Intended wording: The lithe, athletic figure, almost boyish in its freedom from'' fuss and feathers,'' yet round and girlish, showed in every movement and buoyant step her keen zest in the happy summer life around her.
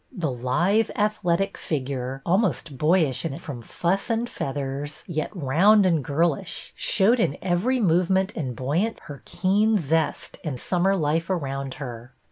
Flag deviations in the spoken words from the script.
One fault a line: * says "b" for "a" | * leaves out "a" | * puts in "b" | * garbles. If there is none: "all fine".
* leaves out "its freedom"
* leaves out "step"
* leaves out "the happy"